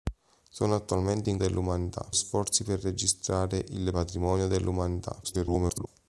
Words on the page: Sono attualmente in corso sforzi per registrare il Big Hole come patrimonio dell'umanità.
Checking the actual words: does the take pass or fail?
fail